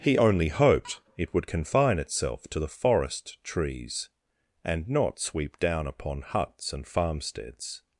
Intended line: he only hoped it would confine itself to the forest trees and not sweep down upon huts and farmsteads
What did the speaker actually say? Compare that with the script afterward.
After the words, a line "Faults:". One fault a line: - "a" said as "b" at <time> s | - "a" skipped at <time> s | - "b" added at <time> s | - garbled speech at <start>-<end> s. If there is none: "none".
he only hoped it would confine itself to the forest trees and not sweep down upon huts and farmsteads
Faults:
none